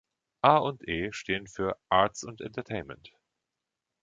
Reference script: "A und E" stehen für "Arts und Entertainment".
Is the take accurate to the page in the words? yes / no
yes